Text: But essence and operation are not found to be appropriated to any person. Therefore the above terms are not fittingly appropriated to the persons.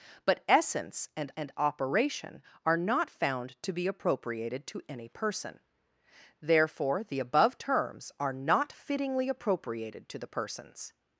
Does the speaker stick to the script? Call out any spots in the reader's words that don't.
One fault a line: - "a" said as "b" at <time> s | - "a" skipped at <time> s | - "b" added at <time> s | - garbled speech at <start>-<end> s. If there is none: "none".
- "and" added at 1.4 s